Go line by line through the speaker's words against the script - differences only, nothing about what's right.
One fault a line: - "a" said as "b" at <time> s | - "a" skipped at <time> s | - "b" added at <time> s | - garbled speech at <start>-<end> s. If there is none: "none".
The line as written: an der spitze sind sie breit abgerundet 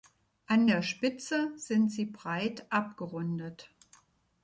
none